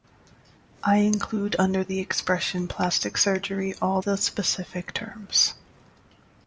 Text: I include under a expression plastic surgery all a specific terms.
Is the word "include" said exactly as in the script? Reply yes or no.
yes